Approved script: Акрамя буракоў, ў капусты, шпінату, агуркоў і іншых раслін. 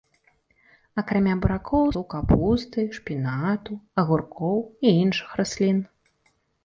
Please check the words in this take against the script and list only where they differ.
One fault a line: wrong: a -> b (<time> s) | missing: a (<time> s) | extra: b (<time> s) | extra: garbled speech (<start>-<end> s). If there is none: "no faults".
no faults